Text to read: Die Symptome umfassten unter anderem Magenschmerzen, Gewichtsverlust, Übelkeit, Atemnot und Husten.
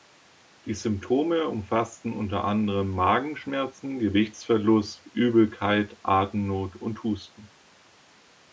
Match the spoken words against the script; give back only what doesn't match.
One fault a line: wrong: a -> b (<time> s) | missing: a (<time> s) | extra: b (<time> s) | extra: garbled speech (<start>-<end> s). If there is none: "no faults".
no faults